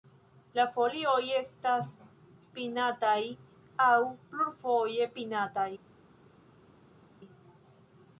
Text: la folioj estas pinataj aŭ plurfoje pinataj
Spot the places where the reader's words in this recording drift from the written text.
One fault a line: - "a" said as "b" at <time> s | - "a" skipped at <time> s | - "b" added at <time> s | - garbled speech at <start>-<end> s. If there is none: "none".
none